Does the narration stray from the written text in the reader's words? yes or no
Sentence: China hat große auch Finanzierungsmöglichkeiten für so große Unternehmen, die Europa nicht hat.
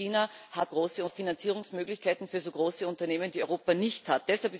no